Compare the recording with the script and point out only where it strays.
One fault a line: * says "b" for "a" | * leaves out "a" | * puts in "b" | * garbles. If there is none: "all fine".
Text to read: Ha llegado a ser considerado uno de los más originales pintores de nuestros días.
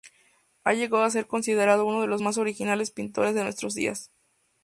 all fine